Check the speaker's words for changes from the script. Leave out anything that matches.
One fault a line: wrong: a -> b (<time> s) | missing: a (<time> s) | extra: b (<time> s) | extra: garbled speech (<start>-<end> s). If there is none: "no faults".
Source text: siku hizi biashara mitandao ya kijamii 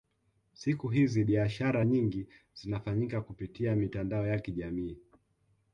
extra: nyingi zinafanyika kupitia (1.8 s)